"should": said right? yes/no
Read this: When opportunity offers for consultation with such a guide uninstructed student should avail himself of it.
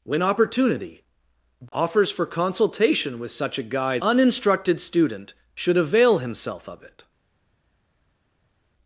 yes